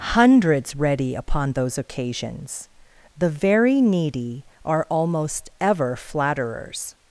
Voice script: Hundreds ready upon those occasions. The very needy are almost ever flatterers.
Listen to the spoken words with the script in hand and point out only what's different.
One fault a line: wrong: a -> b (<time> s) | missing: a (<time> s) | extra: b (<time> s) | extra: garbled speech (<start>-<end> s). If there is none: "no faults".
no faults